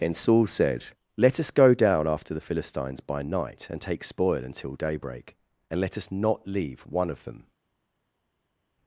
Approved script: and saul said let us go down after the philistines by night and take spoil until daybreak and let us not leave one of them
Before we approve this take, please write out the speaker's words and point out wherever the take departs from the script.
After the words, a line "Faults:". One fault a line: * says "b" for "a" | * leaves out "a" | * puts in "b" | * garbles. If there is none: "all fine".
and saul said let us go down after the philistines by night and take spoil until daybreak and let us not leave one of them
Faults:
all fine